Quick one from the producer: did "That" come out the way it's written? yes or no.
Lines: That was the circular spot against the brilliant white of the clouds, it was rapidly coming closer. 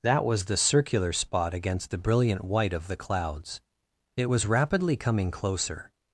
yes